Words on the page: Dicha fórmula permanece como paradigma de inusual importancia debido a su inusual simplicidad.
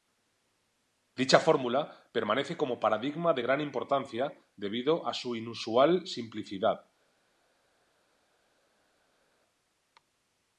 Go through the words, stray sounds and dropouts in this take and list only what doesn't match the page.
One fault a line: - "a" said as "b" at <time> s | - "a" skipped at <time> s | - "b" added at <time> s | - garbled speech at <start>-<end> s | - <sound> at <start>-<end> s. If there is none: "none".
- "inusual" said as "gran" at 3.4 s